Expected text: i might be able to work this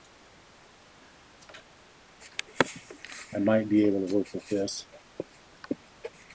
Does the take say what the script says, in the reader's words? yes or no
no